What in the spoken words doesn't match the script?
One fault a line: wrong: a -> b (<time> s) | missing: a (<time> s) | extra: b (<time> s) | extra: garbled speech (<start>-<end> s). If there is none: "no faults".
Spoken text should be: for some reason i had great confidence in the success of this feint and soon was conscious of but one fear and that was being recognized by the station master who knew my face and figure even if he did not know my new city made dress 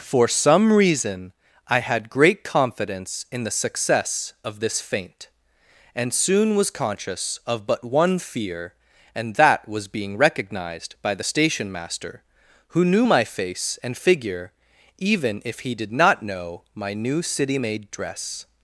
no faults